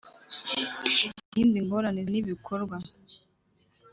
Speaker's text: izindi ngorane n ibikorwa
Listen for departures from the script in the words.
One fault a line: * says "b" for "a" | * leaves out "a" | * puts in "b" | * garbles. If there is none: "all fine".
all fine